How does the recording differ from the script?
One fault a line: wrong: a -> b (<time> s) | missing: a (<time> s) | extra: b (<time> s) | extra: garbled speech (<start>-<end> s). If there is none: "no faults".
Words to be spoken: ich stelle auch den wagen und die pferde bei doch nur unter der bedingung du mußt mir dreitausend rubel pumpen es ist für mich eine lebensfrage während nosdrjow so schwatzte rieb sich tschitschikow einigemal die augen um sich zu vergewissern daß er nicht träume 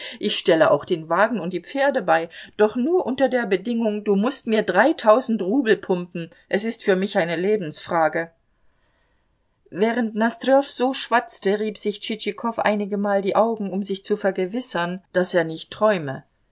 no faults